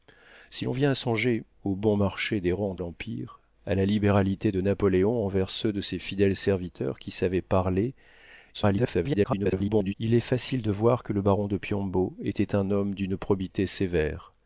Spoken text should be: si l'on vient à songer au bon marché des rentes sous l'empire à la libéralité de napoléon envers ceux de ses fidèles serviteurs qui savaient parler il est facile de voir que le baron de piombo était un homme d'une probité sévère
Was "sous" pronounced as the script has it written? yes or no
no